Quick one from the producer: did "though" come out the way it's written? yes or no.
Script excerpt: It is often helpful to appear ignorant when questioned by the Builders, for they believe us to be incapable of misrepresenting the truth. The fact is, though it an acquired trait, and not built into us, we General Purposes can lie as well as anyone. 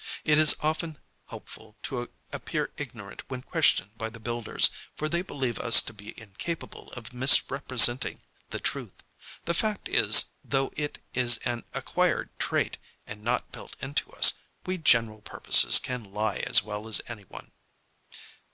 yes